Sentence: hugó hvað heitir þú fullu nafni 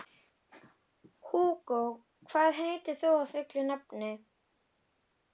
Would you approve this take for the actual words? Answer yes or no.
yes